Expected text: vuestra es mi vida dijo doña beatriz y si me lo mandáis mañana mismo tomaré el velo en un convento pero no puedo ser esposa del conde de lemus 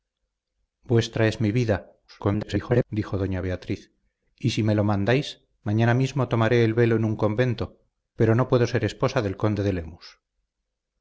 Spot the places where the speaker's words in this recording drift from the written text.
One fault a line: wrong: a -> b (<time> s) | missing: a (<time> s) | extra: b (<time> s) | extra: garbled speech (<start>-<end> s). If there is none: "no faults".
extra: garbled speech (2.1-2.9 s)